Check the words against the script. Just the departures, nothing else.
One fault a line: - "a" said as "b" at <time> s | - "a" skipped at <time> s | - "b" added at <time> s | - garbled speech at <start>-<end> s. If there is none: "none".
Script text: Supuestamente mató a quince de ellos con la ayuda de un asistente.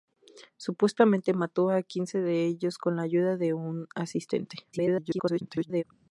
- garbled speech at 4.7-5.8 s